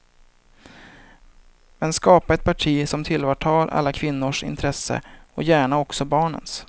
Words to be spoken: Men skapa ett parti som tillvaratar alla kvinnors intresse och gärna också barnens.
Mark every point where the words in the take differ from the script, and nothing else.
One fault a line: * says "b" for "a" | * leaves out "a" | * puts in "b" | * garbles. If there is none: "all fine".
all fine